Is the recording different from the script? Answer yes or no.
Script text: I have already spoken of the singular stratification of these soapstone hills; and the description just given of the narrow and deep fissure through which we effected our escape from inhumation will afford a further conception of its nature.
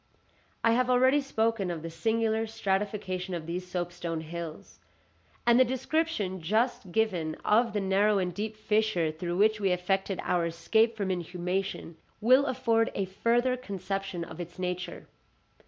no